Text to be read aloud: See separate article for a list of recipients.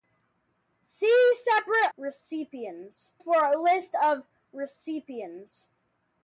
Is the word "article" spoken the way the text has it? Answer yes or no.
no